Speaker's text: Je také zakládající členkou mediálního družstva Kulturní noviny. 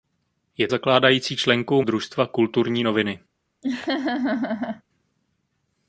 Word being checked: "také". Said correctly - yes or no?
no